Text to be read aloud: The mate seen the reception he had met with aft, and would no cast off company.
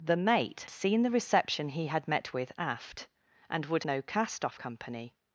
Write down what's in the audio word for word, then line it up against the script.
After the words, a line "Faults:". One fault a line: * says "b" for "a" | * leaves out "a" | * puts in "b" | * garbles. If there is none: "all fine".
The mate seen the reception he had met with aft, and would no cast off company.
Faults:
all fine